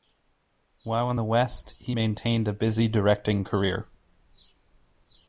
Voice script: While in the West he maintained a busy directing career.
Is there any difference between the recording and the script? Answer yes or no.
no